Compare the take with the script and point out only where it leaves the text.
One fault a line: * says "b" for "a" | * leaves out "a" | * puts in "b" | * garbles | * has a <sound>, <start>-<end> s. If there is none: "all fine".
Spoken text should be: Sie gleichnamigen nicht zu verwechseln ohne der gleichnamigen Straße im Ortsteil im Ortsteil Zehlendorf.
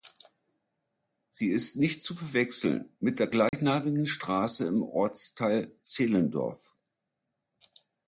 * says "ist" for "gleichnamigen"
* says "mit" for "ohne"
* has a dropout, 3.5-3.5 s
* leaves out "im Ortsteil"